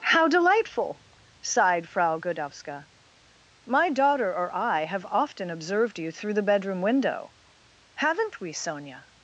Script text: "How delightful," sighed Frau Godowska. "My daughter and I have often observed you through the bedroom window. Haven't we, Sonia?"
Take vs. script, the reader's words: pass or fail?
fail